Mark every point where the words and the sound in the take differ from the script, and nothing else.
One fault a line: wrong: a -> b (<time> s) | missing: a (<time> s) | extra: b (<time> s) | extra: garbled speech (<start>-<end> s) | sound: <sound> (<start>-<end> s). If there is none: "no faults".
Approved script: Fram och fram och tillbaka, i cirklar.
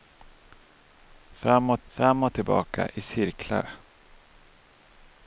no faults